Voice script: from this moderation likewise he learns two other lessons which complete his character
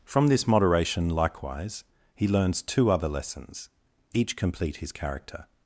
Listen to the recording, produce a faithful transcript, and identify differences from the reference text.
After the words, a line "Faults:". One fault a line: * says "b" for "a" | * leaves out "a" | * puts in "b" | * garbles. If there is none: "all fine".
from this moderation likewise he learns two other lessons each complete his character
Faults:
* says "each" for "which"